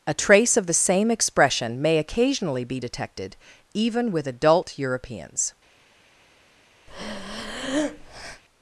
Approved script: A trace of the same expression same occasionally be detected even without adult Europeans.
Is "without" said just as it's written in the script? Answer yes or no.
no